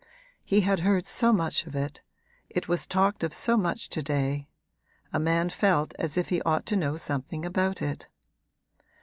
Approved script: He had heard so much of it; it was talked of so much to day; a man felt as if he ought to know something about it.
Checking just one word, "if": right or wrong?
right